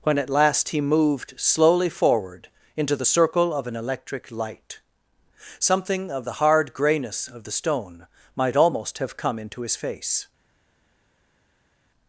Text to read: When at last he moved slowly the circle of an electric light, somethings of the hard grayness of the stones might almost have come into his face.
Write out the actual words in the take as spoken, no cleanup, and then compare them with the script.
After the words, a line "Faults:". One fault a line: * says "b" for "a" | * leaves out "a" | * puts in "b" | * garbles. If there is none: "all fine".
When at last he moved slowly forward into the circle of an electric light, something of the hard grayness of the stone might almost have come into his face.
Faults:
* puts in "forward into"
* says "something" for "somethings"
* says "stone" for "stones"